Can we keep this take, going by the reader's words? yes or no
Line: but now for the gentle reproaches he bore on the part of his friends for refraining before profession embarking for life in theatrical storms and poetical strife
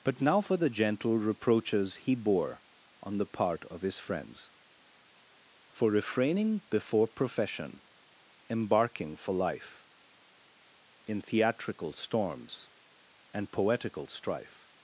yes